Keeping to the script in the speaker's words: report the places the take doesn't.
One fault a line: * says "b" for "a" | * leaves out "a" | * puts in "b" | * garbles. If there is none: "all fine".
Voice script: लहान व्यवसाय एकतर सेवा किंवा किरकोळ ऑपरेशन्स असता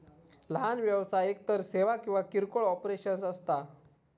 all fine